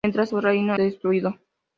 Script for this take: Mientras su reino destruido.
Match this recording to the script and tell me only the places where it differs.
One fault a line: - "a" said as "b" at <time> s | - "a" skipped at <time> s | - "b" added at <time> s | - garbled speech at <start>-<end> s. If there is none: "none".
none